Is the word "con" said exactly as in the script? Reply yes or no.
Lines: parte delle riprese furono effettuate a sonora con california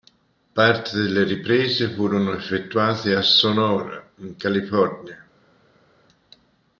no